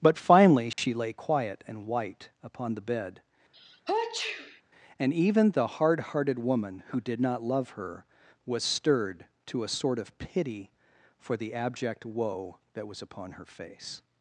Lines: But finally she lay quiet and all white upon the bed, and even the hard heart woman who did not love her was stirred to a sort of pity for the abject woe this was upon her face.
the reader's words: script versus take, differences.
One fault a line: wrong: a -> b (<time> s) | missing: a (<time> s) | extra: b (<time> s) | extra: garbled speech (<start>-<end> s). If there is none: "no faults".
missing: all (1.9 s)
wrong: heart -> hearted (6.0 s)
wrong: this -> that (12.7 s)